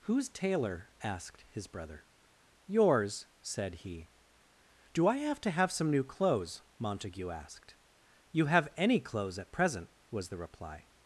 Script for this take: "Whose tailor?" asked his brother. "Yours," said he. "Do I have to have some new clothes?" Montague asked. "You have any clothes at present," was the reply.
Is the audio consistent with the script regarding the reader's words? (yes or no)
yes